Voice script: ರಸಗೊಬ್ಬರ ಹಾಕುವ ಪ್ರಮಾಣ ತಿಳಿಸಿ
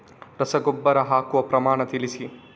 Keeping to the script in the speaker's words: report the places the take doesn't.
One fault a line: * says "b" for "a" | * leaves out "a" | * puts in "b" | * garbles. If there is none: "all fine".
all fine